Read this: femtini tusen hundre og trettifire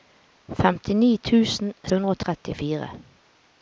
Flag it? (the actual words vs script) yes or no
no